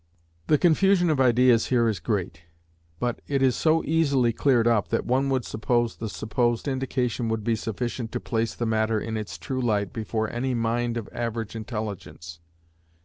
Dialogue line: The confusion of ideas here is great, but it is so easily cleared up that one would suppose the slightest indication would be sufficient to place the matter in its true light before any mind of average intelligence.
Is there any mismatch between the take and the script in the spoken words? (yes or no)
yes